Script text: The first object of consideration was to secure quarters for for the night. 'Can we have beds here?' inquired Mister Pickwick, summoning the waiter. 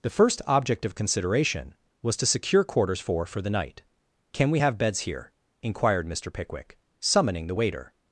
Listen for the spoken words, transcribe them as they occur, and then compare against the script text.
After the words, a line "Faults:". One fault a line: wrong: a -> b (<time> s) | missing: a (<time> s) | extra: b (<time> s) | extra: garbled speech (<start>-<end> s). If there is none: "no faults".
The first object of consideration was to secure quarters for for the night. 'Can we have beds here?' inquired Mister Pickwick, summoning the waiter.
Faults:
no faults